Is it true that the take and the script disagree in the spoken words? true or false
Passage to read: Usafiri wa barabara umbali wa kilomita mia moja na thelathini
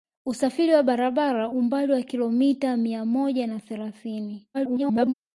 true